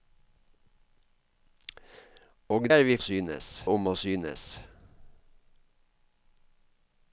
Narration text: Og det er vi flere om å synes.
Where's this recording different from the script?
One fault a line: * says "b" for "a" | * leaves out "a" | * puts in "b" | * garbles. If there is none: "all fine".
* leaves out "det"
* says "synes" for "flere"